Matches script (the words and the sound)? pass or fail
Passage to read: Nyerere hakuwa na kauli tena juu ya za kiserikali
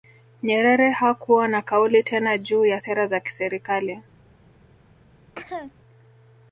fail